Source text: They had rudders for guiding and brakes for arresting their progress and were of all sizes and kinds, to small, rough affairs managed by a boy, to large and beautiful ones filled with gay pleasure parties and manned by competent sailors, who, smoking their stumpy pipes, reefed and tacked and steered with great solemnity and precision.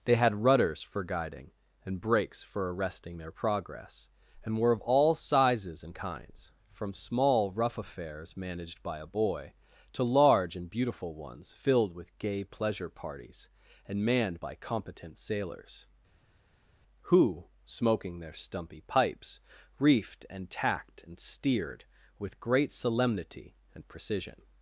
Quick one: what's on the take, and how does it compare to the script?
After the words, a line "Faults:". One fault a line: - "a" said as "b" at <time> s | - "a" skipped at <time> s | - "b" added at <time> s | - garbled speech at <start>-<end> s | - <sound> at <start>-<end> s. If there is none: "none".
They had rudders for guiding and brakes for arresting their progress and were of all sizes and kinds, from small, rough affairs managed by a boy, to large and beautiful ones filled with gay pleasure parties and manned by competent sailors, who, smoking their stumpy pipes, reefed and tacked and steered with great solemnity and precision.
Faults:
- "to" said as "from" at 6.7 s